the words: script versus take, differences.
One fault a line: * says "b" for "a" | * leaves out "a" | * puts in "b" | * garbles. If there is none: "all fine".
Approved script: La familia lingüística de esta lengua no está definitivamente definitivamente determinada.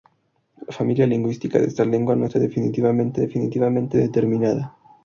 all fine